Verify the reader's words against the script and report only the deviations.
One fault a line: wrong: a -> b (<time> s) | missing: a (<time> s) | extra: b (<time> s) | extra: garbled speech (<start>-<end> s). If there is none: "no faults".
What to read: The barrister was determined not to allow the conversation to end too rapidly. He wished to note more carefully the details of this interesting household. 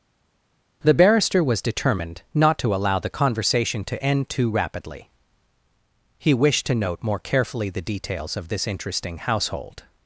no faults